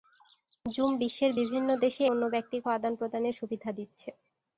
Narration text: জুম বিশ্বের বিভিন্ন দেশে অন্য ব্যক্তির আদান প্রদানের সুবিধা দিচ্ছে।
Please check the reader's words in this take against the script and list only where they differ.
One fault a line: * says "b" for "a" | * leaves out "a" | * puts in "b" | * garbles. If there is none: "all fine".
all fine